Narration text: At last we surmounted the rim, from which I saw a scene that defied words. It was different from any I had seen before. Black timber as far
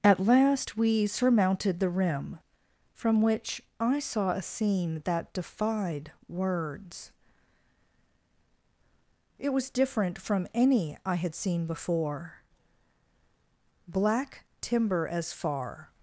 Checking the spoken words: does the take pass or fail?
pass